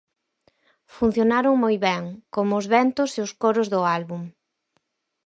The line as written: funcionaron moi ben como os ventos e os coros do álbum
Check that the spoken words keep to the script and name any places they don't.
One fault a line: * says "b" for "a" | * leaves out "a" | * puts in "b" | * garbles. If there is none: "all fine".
all fine